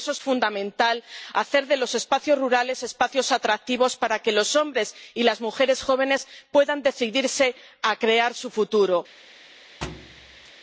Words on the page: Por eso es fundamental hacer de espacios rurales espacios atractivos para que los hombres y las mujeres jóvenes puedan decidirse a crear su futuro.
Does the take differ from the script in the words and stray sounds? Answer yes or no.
yes